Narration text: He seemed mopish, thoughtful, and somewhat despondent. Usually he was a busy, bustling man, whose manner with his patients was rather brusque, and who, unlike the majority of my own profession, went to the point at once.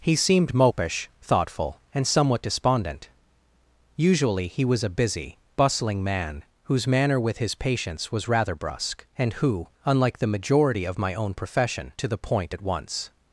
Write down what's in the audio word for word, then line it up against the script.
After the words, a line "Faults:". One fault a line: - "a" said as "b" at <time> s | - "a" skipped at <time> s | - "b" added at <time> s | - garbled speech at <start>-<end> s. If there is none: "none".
He seemed mopish, thoughtful, and somewhat despondent. Usually he was a busy, bustling man, whose manner with his patients was rather brusque, and who, unlike the majority of my own profession, to the point at once.
Faults:
- "went" skipped at 11.9 s